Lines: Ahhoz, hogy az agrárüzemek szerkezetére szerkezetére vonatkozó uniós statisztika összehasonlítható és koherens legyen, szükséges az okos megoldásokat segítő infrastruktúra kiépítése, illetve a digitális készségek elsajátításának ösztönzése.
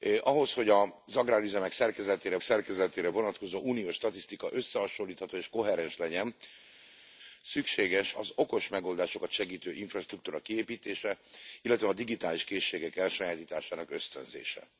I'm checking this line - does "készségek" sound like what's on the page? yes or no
yes